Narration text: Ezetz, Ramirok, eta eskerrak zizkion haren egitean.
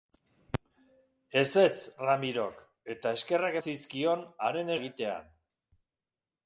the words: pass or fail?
pass